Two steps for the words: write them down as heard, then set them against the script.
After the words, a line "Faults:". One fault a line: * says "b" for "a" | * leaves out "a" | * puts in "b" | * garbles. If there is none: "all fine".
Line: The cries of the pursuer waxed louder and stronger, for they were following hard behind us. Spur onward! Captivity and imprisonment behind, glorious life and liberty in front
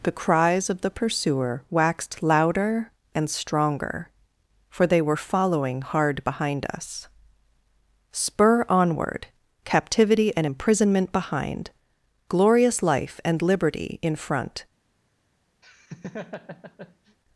The cries of the pursuer waxed louder and stronger, for they were following hard behind us. Spur onward! Captivity and imprisonment behind, glorious life and liberty in front
Faults:
all fine